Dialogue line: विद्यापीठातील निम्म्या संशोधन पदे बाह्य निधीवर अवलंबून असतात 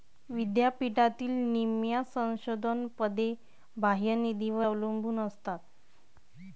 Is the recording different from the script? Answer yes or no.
no